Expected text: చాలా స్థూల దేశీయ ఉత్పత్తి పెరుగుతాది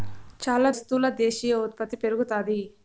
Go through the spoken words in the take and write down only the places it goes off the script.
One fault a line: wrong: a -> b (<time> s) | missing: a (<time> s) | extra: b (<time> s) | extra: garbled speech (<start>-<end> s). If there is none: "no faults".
no faults